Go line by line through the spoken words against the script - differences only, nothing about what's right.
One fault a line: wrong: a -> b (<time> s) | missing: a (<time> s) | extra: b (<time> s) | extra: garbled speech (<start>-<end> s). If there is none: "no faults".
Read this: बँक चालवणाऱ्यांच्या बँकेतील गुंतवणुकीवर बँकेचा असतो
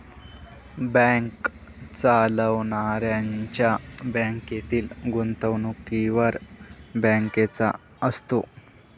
no faults